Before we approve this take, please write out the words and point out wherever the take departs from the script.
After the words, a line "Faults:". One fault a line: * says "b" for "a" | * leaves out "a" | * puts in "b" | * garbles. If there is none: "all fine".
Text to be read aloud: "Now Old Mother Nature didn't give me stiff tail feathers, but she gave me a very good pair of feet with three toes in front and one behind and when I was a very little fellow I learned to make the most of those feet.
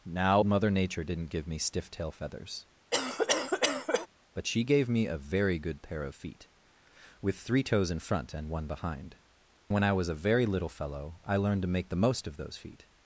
"Now Mother Nature didn't give me stiff tail feathers, but she gave me a very good pair of feet with three toes in front and one behind when I was a very little fellow I learned to make the most of those feet.
Faults:
* leaves out "Old"
* leaves out "and"